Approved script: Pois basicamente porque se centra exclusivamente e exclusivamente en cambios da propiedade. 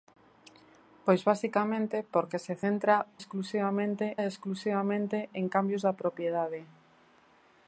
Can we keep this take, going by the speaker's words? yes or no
yes